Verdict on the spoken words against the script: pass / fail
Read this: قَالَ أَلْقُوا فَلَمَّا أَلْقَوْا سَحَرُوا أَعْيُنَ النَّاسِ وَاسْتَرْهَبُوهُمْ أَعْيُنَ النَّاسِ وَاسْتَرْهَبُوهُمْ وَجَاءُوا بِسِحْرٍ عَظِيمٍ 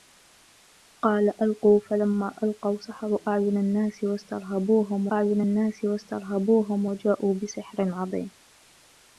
pass